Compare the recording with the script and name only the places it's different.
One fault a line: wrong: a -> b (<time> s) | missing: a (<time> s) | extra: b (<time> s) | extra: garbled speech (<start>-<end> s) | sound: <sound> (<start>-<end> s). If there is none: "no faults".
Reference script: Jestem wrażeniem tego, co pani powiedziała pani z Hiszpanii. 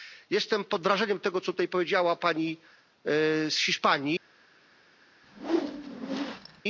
extra: pod (0.6 s)
wrong: pani -> tutaj (1.4 s)
sound: whoosh (5.2-6.6 s)